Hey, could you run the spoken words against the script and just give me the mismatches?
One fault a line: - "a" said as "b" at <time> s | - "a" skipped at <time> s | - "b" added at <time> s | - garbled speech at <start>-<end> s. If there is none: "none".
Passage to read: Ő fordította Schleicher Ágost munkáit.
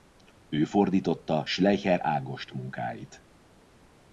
none